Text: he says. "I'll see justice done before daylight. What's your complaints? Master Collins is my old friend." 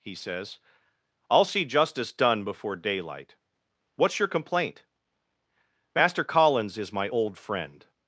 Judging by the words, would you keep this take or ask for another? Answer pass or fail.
fail